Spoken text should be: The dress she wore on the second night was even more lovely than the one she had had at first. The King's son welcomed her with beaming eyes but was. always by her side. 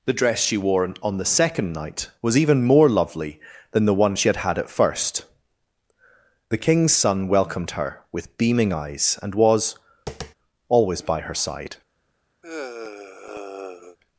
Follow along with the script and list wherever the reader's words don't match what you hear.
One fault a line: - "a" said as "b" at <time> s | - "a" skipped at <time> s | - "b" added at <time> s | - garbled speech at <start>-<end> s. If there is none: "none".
- "but" said as "and" at 9.2 s